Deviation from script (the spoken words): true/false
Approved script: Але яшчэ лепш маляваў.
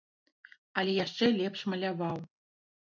false